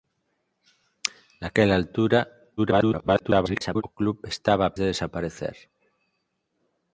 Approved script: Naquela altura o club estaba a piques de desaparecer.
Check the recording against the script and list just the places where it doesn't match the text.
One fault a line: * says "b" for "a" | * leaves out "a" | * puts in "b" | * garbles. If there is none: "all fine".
* garbles
* leaves out "piques"